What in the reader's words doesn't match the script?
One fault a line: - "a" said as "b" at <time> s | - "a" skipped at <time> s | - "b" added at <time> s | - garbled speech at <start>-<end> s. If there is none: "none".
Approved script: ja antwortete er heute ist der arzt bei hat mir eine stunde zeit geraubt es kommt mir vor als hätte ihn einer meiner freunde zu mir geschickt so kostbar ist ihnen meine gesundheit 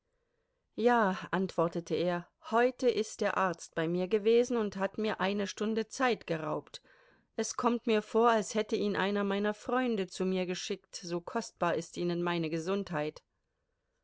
- "mir gewesen und" added at 3.9 s